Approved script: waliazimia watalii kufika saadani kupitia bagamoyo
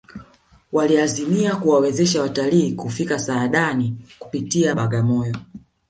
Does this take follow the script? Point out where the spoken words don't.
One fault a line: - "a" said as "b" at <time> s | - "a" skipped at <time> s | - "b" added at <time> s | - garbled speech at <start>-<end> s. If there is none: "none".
- "kuwawezesha" added at 1.6 s